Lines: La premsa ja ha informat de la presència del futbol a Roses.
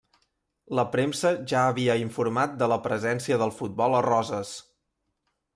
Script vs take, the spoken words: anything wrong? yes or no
yes